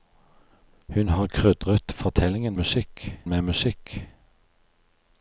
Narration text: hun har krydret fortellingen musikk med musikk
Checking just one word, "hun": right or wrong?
right